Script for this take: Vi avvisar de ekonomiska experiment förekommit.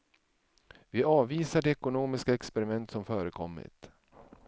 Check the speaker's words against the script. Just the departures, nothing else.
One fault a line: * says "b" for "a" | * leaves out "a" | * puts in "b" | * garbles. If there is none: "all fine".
* puts in "som"